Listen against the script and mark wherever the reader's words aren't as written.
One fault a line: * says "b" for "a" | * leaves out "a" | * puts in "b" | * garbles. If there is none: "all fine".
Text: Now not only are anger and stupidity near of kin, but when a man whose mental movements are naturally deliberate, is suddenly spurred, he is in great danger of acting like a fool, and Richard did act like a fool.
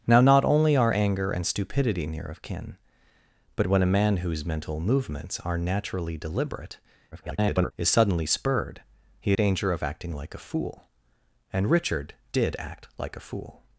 * garbles
* leaves out "is in great"